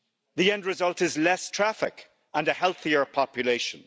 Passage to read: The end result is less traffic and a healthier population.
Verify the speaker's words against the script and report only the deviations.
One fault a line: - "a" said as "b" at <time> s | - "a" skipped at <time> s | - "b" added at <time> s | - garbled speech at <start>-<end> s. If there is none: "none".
none